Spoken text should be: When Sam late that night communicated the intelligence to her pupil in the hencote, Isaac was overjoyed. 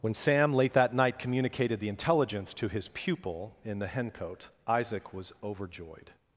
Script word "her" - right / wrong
wrong